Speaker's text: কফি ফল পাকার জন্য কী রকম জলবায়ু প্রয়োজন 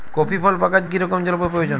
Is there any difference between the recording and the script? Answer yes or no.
yes